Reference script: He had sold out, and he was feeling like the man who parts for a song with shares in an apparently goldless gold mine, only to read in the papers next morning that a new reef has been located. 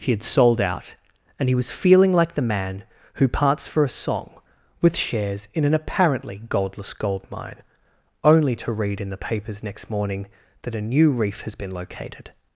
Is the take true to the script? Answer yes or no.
yes